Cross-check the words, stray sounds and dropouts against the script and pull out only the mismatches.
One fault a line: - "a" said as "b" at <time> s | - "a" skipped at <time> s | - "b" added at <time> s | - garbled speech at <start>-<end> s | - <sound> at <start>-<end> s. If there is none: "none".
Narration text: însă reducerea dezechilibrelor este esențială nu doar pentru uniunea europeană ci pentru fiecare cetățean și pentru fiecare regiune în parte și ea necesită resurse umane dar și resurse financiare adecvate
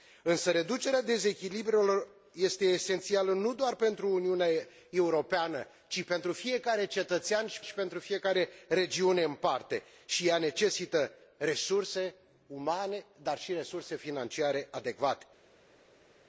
- "și" added at 7.6 s